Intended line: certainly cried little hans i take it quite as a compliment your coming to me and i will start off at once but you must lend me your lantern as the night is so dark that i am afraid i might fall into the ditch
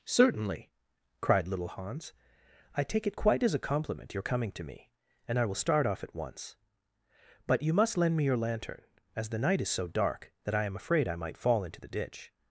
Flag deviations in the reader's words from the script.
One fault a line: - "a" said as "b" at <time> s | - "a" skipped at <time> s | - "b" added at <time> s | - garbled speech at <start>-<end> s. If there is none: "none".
none